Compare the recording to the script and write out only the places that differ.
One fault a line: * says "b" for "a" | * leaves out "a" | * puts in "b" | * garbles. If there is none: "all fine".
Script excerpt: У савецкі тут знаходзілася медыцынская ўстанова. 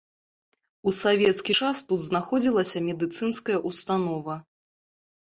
* puts in "час"